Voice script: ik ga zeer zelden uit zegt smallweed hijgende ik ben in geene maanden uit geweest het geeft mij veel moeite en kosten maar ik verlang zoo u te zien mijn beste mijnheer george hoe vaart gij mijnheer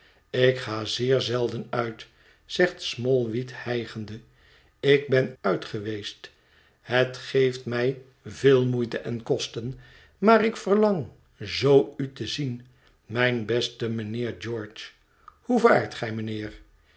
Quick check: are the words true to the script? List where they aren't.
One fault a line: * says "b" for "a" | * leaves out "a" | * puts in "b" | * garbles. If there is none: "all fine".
* leaves out "in geene maanden"